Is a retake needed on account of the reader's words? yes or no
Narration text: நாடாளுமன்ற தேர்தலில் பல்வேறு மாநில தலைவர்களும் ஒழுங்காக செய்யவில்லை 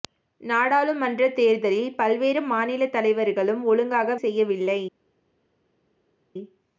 no